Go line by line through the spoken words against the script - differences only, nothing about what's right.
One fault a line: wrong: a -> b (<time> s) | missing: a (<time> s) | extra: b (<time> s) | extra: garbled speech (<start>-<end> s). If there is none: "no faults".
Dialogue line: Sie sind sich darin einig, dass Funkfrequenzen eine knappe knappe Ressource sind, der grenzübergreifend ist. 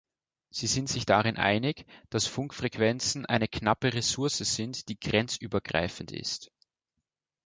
missing: knappe (3.9 s)
wrong: der -> die (4.9 s)